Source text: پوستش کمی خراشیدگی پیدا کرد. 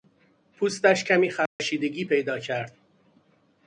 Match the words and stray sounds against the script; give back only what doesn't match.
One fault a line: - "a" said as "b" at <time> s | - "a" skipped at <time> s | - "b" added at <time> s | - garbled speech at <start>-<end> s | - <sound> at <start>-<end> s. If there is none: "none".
- dropout at 1.5-1.6 s